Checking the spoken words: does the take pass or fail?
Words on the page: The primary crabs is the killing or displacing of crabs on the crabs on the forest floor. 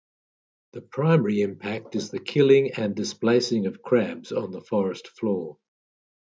fail